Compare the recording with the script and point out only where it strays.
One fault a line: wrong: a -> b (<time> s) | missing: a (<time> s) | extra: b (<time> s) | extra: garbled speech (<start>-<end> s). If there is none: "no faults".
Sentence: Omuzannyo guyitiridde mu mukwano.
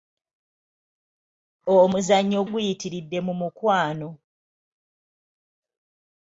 no faults